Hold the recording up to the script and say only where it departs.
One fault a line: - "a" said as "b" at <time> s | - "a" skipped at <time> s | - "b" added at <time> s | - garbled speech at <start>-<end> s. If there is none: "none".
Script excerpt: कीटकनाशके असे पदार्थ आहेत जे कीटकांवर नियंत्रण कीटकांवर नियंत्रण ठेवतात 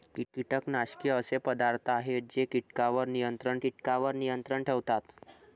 none